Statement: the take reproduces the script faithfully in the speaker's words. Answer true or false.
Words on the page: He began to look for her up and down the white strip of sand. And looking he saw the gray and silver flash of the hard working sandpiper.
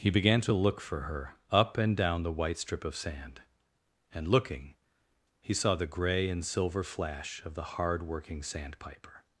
true